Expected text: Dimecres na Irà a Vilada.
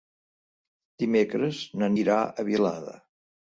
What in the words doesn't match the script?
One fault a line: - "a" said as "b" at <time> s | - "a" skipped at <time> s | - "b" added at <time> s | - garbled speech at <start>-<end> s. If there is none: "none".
none